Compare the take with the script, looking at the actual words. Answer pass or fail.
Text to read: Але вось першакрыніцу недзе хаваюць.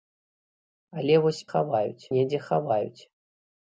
fail